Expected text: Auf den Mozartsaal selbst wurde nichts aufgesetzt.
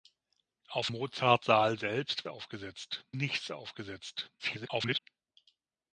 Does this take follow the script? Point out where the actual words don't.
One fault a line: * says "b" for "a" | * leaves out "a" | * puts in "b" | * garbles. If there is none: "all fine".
* leaves out "den"
* says "aufgesetzt" for "wurde"
* garbles